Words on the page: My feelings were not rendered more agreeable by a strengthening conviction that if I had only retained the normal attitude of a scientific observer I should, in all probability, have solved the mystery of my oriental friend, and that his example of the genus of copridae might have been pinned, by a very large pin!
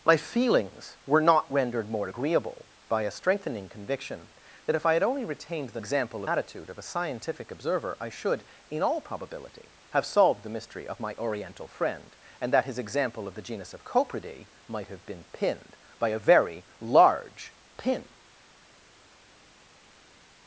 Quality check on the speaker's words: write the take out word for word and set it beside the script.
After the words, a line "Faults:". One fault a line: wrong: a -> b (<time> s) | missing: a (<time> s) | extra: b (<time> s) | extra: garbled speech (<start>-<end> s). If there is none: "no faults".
My feelings were not rendered more agreeable by a strengthening conviction that if I had only retained the example attitude of a scientific observer I should, in all probability, have solved the mystery of my oriental friend, and that his example of the genus of copridae might have been pinned, by a very large pin!
Faults:
wrong: normal -> example (5.8 s)